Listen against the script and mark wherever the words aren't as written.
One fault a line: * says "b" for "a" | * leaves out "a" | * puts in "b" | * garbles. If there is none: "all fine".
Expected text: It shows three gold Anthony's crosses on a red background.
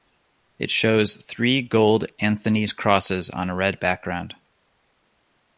all fine